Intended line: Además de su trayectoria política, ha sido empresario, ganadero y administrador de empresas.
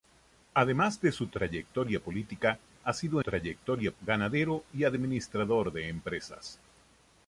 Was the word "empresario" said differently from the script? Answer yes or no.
yes